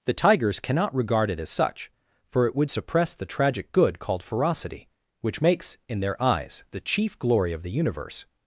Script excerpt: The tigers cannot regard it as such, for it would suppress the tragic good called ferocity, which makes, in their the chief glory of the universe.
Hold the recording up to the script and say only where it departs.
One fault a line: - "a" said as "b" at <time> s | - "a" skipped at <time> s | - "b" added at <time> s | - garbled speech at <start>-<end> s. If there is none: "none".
- "eyes" added at 6.2 s